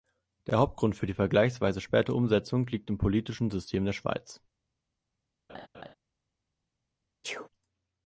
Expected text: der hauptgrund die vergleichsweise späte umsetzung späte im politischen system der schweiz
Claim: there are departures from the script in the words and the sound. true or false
true